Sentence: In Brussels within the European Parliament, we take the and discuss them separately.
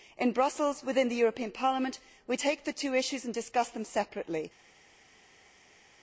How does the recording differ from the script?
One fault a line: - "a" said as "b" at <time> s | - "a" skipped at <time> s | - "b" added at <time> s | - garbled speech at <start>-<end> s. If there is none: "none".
- "two issues" added at 2.7 s